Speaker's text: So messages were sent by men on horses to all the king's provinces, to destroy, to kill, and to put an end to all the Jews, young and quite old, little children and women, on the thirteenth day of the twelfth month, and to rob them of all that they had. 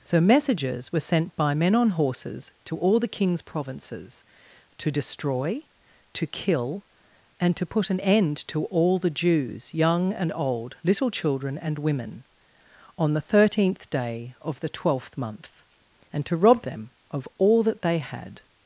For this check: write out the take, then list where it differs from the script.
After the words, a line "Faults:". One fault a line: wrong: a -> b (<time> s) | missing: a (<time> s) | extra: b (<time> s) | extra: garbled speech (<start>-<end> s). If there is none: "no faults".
So messages were sent by men on horses to all the king's provinces, to destroy, to kill, and to put an end to all the Jews, young and old, little children and women, on the thirteenth day of the twelfth month, and to rob them of all that they had.
Faults:
missing: quite (10.3 s)